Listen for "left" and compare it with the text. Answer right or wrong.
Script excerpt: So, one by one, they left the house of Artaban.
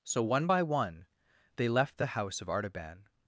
right